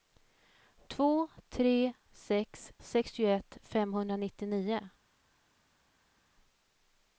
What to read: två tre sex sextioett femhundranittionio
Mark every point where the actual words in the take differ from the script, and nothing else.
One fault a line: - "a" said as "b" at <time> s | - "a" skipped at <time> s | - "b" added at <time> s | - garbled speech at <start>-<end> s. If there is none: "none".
none